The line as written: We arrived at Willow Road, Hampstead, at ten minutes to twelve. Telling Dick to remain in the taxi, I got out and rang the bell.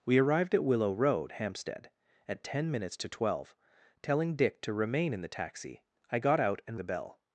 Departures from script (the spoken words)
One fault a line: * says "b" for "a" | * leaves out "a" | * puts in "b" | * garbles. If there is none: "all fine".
* leaves out "rang"